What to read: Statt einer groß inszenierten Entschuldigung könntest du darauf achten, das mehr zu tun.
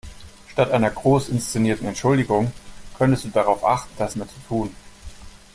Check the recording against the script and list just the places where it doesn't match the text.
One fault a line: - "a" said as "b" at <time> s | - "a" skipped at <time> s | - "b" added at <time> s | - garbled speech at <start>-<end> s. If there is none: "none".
none